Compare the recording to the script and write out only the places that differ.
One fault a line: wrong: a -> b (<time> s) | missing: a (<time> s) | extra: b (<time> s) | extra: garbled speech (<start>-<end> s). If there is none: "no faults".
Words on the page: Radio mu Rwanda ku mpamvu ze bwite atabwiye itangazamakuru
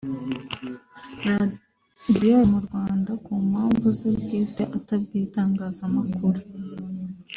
no faults